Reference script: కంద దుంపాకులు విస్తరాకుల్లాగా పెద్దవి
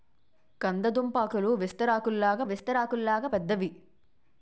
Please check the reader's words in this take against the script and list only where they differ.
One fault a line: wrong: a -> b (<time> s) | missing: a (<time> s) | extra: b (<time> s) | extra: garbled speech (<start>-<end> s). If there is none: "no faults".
extra: విస్తరాకుల్లాగా (2.4 s)